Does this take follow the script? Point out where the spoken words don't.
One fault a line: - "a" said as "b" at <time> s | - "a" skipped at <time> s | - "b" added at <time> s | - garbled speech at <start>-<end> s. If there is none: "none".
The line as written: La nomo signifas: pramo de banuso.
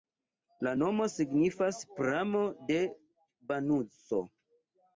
none